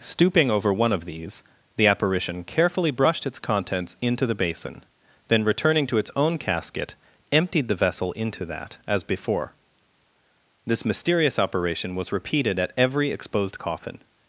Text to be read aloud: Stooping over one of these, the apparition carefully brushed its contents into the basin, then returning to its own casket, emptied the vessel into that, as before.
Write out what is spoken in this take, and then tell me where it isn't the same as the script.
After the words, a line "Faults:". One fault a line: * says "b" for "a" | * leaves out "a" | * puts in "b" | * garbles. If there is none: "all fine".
Stooping over one of these, the apparition carefully brushed its contents into the basin, then returning to its own casket, emptied the vessel into that, as before. This mysterious operation was repeated at every exposed coffin
Faults:
* puts in "This mysterious operation was repeated at every exposed coffin"